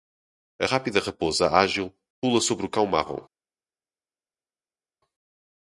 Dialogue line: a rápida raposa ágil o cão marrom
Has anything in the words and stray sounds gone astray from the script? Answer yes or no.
yes